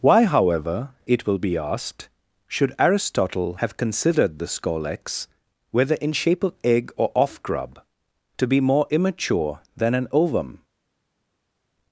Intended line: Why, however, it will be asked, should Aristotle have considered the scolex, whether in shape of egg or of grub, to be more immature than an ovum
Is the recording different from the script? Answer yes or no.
yes